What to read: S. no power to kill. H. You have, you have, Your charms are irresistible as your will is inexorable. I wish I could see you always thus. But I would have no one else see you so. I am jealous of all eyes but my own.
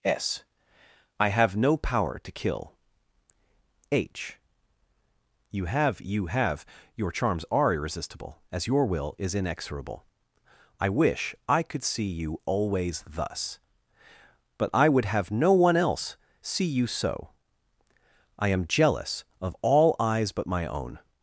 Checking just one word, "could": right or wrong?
right